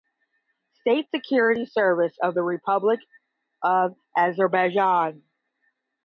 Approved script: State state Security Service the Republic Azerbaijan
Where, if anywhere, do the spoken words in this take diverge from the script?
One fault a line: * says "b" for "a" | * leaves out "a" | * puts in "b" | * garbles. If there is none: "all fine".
* leaves out "state"
* puts in "of"
* puts in "of"